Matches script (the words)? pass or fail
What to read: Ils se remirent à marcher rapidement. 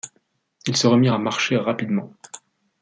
pass